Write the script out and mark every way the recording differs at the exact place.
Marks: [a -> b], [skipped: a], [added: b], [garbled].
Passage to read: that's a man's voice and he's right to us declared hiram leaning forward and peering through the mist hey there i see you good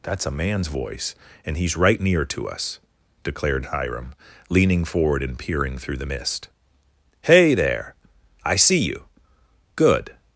that's a man's voice and he's right [added: near] to us declared hiram leaning forward and peering through the mist hey there i see you good